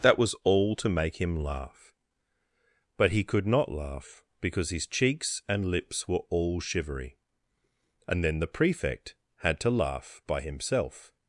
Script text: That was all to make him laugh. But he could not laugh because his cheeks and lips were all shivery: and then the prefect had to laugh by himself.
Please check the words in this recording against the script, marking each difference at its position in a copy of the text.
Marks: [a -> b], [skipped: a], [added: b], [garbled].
That was all to make him laugh. But he could not laugh because his cheeks and lips were all shivery: and then the prefect had to laugh by himself.